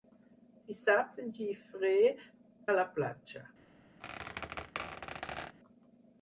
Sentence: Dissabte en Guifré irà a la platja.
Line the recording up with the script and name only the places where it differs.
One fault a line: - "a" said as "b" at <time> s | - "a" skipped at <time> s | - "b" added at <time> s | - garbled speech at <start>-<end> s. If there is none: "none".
- "irà" skipped at 1.9 s